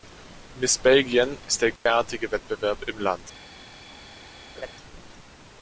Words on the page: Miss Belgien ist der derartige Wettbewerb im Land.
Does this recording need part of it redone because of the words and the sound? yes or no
yes